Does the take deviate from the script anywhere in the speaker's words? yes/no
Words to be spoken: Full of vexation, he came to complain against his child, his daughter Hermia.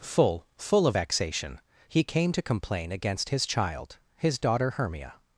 yes